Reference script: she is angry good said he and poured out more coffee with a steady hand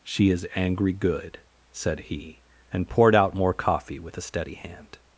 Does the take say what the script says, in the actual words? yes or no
yes